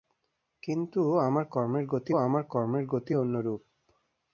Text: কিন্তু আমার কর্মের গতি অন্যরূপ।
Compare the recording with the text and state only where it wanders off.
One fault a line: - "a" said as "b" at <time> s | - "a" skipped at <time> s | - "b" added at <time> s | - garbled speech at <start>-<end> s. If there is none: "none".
- "আমার কর্মের গতি" added at 2.2 s